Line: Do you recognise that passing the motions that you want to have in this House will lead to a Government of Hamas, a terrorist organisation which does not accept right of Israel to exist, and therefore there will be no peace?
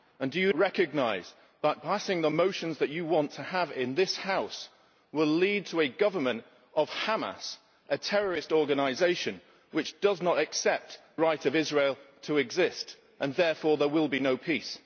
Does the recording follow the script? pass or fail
pass